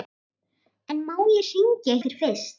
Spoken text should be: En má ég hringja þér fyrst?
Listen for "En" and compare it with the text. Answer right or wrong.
right